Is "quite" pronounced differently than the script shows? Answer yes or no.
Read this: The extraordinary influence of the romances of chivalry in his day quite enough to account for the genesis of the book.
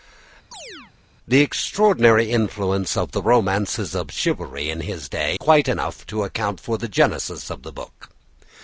no